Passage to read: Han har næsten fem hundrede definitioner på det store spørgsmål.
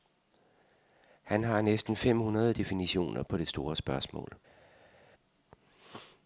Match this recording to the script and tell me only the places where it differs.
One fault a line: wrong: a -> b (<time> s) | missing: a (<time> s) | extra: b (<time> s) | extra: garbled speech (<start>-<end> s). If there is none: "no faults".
no faults